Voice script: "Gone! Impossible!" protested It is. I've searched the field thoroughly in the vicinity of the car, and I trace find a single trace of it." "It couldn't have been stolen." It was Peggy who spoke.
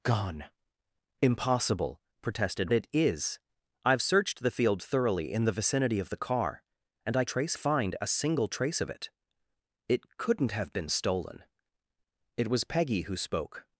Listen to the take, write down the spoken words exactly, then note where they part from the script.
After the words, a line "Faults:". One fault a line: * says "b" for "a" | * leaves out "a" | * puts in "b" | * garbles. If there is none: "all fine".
"Gone! Impossible!" protested It is. I've searched the field thoroughly in the vicinity of the car, and I trace find a single trace of it." "It couldn't have been stolen." It was Peggy who spoke.
Faults:
all fine